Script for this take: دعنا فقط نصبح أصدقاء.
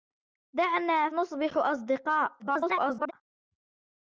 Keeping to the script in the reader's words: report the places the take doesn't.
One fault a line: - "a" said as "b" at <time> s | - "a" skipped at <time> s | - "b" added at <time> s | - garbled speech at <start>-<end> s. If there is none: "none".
- "فقط" skipped at 1.1 s
- garbled speech at 2.4-3.1 s